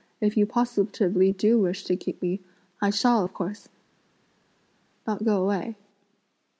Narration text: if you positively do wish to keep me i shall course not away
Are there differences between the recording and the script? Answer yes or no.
yes